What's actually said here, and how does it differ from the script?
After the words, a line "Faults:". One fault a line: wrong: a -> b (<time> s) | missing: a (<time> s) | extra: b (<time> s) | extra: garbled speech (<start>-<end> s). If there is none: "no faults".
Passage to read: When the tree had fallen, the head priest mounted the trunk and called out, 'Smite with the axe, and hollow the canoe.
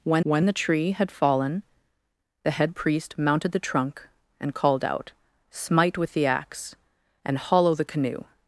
When when the tree had fallen, the head priest mounted the trunk and called out, 'Smite with the axe, and hollow the canoe.
Faults:
extra: when (0.2 s)